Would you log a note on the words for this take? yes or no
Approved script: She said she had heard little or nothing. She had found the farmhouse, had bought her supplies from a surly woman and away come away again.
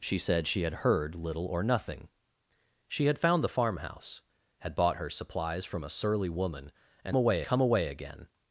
no